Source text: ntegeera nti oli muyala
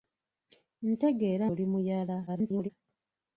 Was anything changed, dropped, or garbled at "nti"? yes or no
yes